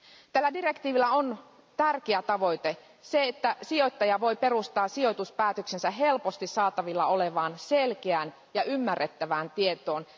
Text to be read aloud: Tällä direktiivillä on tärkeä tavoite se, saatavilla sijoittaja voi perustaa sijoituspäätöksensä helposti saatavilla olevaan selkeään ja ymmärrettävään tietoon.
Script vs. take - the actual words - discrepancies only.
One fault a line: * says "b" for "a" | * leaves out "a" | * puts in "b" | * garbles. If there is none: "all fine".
* says "että" for "saatavilla"